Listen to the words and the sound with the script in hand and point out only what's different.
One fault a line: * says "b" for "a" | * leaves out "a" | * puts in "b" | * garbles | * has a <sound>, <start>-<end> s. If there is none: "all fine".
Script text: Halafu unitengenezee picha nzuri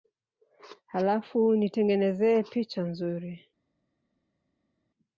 all fine